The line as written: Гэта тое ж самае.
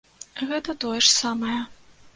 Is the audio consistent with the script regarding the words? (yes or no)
yes